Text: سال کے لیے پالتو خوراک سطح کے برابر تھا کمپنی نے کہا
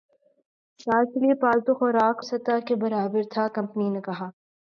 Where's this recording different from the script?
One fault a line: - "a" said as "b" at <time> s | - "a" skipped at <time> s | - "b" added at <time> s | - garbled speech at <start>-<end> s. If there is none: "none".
none